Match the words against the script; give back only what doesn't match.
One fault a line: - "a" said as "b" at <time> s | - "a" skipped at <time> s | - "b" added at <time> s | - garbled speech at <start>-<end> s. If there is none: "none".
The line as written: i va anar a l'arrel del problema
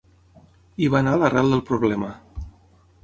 none